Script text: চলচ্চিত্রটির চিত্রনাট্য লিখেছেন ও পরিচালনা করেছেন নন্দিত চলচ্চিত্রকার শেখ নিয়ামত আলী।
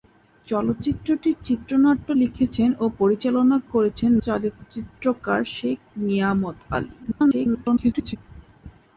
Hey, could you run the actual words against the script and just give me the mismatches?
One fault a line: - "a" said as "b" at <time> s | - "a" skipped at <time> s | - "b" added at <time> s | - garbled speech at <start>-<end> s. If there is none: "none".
- "নন্দিত" skipped at 4.1 s
- garbled speech at 7.0-8.2 s